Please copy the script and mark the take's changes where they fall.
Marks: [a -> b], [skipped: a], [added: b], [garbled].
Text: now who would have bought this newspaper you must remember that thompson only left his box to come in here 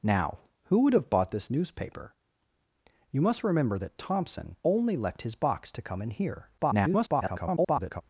now who would have bought this newspaper you must remember that thompson only left his box to come in here [garbled]